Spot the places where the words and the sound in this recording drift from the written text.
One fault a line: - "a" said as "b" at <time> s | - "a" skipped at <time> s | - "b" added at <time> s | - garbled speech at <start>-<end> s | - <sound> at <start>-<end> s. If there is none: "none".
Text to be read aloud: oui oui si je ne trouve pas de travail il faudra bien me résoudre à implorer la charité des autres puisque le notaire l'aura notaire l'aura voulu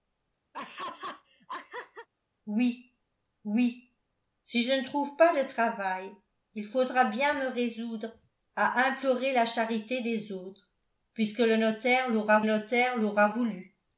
- laugh at 0.5-2.1 s